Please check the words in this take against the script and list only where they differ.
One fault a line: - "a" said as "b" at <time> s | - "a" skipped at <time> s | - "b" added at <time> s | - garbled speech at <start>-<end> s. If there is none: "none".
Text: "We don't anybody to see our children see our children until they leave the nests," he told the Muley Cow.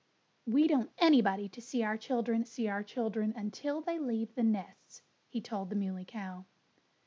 none